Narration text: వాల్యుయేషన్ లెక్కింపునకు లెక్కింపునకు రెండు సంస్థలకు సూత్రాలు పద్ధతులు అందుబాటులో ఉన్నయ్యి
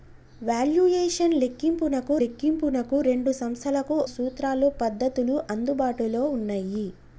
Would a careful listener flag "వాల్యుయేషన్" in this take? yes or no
no